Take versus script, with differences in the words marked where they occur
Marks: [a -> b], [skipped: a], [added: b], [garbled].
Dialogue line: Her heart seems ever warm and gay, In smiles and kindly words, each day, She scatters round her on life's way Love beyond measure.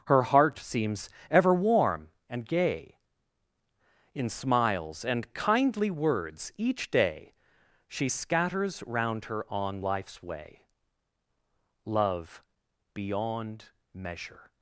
Her heart seems ever warm and gay, In smiles and kindly words, each day, She scatters round her on life's way Love beyond measure.